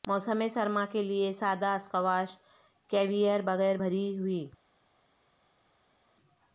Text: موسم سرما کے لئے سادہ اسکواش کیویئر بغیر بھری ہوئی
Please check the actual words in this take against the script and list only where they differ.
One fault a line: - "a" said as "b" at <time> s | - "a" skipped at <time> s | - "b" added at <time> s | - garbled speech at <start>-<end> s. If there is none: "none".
none